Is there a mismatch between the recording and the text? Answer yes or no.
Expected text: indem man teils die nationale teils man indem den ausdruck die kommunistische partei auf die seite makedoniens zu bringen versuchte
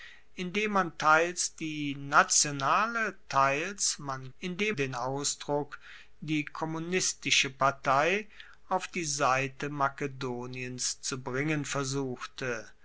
no